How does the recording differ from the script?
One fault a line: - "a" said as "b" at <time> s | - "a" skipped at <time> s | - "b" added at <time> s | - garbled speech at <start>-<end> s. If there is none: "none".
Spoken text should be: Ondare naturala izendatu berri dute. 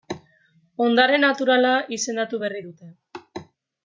none